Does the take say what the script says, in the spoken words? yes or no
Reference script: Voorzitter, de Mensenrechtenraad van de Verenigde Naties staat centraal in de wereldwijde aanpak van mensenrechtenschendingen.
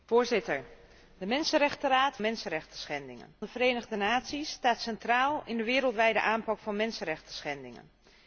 no